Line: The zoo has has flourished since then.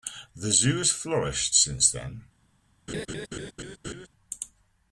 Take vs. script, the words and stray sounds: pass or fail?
fail